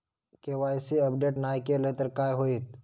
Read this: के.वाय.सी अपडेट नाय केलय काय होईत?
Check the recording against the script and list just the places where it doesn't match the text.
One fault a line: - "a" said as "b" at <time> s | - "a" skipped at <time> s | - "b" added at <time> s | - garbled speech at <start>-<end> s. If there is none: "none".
- "तर" added at 2.0 s